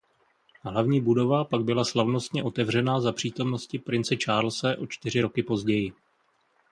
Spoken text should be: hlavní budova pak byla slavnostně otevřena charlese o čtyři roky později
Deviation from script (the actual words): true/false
true